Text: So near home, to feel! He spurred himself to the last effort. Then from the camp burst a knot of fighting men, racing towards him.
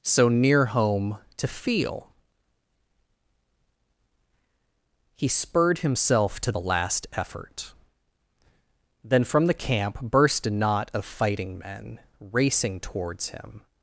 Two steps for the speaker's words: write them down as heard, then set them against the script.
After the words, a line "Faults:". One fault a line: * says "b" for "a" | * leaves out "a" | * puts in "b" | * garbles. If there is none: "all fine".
So near home, to feel! He spurred himself to the last effort. Then from the camp burst a knot of fighting men, racing towards him.
Faults:
all fine